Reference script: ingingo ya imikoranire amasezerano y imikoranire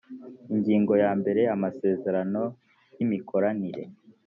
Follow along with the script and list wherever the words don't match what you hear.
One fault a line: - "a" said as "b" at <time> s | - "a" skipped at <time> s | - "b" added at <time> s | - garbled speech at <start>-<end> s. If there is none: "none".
- "imikoranire" said as "mbere" at 1.2 s